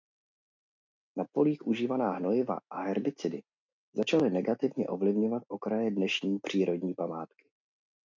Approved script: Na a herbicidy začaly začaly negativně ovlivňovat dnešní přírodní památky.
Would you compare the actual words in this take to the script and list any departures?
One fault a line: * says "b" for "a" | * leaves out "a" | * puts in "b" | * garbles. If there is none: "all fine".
* puts in "polích užívaná hnojiva"
* leaves out "začaly"
* puts in "okraje"